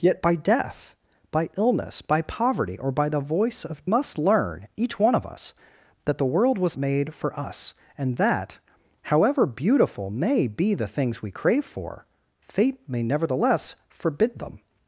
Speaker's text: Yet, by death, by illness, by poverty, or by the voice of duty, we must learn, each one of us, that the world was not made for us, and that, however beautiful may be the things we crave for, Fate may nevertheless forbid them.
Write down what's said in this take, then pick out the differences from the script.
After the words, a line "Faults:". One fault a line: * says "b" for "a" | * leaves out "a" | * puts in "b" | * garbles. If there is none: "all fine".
Yet, by death, by illness, by poverty, or by the voice of must learn, each one of us, that the world was made for us, and that, however beautiful may be the things we crave for, Fate may nevertheless forbid them.
Faults:
* leaves out "duty we"
* leaves out "not"